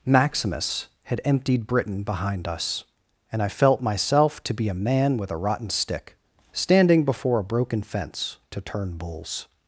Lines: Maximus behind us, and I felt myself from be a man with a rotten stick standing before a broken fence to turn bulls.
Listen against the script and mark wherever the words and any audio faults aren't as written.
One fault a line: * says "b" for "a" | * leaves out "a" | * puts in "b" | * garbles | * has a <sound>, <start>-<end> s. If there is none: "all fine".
* puts in "had emptied Britain"
* says "to" for "from"